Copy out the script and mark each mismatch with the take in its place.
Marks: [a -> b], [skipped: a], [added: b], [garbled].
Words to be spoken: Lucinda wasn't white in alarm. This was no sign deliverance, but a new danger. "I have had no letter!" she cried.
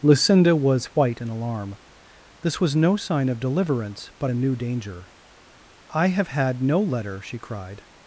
Lucinda [wasn't -> was] white in alarm. This was no sign [added: of] deliverance, but a new danger. "I have had no letter!" she cried.